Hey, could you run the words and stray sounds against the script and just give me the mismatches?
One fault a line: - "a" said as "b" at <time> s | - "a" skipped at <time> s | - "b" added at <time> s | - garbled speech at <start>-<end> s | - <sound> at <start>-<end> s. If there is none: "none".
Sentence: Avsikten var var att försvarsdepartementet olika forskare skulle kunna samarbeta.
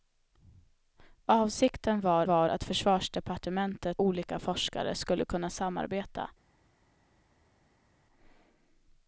none